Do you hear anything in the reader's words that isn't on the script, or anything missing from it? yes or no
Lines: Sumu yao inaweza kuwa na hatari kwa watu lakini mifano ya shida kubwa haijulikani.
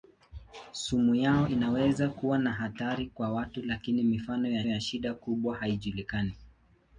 yes